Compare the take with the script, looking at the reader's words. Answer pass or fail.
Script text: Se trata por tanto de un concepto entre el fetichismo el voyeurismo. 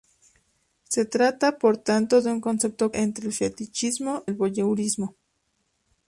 pass